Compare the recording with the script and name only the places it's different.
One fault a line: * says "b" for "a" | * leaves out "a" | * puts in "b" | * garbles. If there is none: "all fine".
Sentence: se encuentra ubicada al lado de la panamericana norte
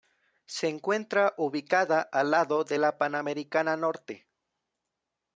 all fine